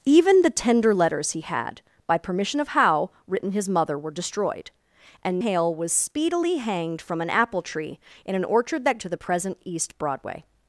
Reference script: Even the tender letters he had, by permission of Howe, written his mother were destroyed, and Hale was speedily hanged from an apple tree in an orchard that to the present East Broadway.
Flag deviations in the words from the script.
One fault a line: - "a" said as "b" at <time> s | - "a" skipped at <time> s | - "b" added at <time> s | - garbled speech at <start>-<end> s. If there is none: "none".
none